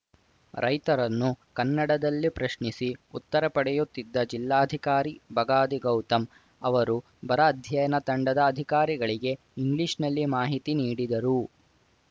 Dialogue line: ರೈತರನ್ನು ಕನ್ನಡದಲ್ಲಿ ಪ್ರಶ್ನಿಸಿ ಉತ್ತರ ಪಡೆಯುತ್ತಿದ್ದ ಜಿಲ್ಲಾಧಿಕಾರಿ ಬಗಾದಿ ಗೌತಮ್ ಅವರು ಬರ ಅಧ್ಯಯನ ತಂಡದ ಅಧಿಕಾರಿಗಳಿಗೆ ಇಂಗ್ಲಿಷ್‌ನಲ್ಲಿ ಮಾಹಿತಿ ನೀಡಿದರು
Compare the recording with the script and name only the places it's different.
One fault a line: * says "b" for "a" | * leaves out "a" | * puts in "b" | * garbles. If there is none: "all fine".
all fine